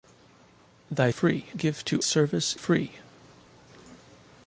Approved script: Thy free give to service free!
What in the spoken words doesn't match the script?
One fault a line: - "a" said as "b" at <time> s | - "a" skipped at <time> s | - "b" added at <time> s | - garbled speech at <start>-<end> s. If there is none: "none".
none